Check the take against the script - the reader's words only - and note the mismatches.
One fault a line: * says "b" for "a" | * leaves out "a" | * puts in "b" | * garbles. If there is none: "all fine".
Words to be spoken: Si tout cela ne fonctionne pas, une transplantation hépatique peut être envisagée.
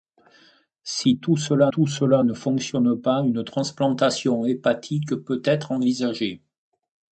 * puts in "tout cela"